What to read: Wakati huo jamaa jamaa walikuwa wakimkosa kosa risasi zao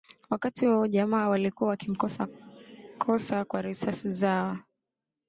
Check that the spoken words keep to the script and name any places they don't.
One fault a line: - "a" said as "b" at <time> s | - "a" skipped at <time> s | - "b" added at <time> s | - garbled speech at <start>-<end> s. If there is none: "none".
- "jamaa" skipped at 1.3 s
- "kwa" added at 3.4 s